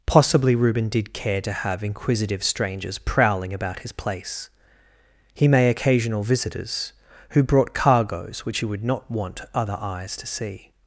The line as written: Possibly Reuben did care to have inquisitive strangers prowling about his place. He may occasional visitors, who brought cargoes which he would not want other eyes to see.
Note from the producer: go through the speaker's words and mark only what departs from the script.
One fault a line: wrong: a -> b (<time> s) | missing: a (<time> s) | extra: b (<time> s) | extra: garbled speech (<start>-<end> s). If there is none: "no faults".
no faults